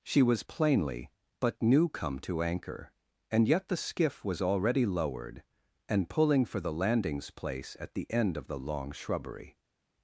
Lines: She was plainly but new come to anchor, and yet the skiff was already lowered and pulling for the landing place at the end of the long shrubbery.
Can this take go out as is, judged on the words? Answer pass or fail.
fail